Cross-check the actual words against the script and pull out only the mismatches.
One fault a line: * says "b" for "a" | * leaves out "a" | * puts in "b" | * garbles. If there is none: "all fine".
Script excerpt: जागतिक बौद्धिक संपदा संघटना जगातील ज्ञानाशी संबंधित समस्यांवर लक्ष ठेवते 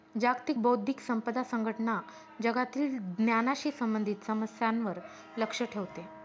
all fine